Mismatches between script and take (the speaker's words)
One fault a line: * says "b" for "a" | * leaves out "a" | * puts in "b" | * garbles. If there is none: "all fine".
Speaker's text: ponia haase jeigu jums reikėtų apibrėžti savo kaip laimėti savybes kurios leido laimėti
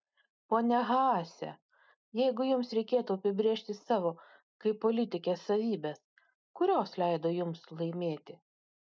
* says "politikės" for "laimėti"
* puts in "jums"